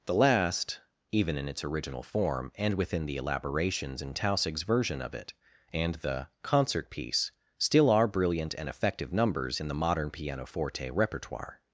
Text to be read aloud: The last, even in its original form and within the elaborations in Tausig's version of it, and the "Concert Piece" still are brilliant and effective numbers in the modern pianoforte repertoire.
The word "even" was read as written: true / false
true